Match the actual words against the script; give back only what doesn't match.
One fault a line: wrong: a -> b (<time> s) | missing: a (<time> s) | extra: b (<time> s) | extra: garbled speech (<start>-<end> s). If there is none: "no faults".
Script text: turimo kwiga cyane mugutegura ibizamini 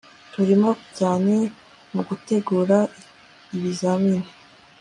missing: kwiga (0.7 s)